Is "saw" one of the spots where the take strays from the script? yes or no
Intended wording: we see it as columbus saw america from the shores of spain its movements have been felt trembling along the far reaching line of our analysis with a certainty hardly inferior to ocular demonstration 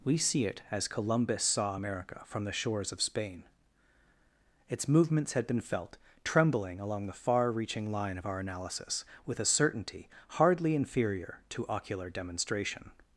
no